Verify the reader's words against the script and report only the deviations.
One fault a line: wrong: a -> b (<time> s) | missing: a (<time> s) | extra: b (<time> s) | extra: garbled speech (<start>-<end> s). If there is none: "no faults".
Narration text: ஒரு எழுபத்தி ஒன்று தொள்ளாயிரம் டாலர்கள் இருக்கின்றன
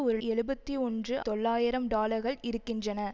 no faults